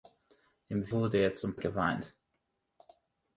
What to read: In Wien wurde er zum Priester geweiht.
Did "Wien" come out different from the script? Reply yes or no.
yes